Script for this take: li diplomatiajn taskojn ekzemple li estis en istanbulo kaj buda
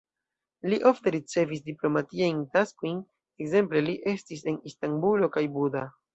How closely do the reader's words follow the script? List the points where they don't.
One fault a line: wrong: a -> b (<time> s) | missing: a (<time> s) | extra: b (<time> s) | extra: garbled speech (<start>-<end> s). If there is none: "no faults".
extra: ofte ricevis (0.9 s)